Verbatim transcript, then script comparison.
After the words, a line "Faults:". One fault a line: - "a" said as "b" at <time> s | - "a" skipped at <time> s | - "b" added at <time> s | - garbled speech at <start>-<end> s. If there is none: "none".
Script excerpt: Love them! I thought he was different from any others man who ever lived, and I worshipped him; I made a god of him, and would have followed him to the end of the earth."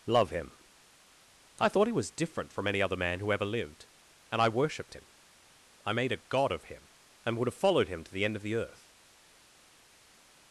Love him! I thought he was different from any other man who ever lived, and I worshipped him; I made a god of him, and would have followed him to the end of the earth."
Faults:
- "them" said as "him" at 0.3 s
- "others" said as "other" at 2.8 s